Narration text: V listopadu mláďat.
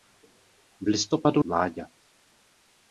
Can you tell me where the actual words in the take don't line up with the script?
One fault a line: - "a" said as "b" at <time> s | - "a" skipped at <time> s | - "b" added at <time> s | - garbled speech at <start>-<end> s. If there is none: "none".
none